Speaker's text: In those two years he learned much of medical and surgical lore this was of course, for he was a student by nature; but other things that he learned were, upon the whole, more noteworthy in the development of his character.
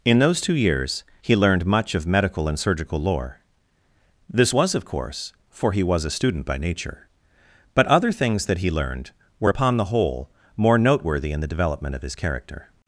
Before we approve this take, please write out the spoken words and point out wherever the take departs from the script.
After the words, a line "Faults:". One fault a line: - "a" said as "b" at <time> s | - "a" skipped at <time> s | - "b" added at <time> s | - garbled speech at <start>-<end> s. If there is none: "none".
In those two years he learned much of medical and surgical lore this was of course, for he was a student by nature; but other things that he learned were, upon the whole, more noteworthy in the development of his character.
Faults:
none